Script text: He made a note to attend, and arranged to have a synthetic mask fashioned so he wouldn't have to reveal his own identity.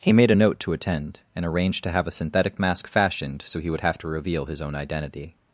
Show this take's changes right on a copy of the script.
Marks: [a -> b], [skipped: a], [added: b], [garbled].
He made a note to attend, and arranged to have a synthetic mask fashioned so he [wouldn't -> would] have to reveal his own identity.